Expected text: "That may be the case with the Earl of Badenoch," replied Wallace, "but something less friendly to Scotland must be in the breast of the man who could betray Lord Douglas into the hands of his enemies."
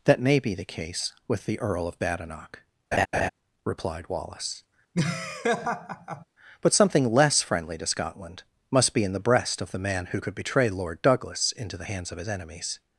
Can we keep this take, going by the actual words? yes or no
yes